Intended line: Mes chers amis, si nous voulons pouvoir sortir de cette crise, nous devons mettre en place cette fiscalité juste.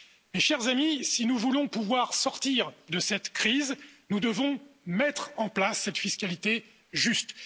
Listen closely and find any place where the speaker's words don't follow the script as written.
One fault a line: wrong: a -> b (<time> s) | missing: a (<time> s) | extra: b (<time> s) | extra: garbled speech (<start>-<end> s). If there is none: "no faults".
no faults